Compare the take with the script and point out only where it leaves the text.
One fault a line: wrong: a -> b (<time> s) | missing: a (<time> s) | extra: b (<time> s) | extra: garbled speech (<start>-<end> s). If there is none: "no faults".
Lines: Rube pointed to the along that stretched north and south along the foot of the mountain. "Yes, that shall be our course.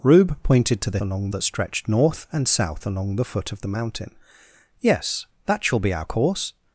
no faults